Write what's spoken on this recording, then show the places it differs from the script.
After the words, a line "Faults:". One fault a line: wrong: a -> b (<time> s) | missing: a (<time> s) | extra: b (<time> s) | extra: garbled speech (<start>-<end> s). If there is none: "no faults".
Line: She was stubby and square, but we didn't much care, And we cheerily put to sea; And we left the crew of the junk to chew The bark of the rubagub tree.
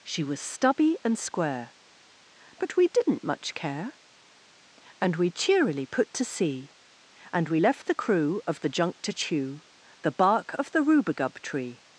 She was stubby and square, but we didn't much care, And we cheerily put to sea; And we left the crew of the junk to chew The bark of the rubagub tree.
Faults:
no faults